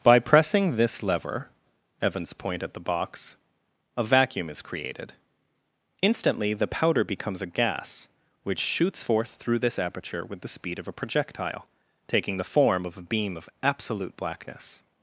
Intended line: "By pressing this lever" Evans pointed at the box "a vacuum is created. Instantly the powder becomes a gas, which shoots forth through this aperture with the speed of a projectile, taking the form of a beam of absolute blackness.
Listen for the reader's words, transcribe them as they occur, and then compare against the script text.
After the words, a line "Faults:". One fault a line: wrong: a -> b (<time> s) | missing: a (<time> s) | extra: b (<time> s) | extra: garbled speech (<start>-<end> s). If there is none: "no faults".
"By pressing this lever" Evans point at the box "a vacuum is created. Instantly the powder becomes a gas, which shoots forth through this aperture with the speed of a projectile, taking the form of a beam of absolute blackness.
Faults:
wrong: pointed -> point (2.3 s)